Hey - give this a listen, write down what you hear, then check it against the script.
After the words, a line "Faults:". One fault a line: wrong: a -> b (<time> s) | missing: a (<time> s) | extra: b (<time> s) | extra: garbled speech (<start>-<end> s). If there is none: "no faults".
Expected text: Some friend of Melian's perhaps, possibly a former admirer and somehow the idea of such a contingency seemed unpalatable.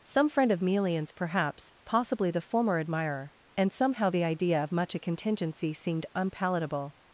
Some friend of Melian's perhaps, possibly the former admirer and somehow the idea of much a contingency seemed unpalatable.
Faults:
wrong: a -> the (2.3 s)
wrong: such -> much (4.7 s)